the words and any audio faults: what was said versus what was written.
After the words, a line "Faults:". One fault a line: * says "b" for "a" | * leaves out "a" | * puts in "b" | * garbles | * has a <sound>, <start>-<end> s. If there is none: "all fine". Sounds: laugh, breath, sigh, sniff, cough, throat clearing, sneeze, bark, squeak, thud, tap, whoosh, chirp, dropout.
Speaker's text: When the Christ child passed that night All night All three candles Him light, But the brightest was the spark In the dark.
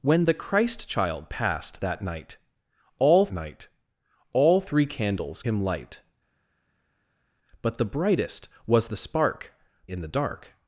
When the Christ child passed that night All night All three candles Him light, But the brightest was the spark In the dark.
Faults:
all fine